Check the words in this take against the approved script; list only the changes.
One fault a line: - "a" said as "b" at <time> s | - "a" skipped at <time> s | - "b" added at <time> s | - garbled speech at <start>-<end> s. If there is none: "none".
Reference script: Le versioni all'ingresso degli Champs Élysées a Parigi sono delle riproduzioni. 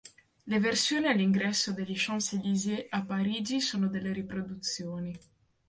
none